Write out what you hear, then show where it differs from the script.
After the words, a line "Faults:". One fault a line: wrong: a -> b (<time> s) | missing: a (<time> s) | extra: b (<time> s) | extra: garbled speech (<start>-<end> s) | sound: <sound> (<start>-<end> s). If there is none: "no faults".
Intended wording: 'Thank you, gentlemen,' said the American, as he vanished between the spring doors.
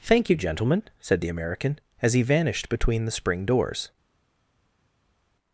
'Thank you, gentlemen,' said the American, as he vanished between the spring doors.
Faults:
no faults